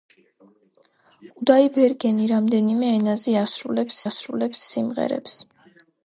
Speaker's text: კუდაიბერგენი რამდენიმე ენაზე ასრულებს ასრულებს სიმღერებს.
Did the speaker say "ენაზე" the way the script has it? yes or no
yes